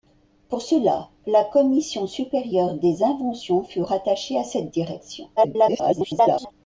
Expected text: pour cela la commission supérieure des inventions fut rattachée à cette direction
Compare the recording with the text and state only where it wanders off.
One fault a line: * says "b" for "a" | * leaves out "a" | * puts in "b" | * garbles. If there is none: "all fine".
* garbles